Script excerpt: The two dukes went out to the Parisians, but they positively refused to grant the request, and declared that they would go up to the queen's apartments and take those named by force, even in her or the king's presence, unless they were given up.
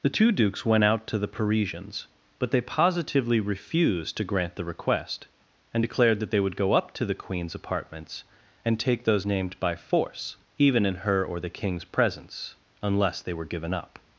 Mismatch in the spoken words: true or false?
false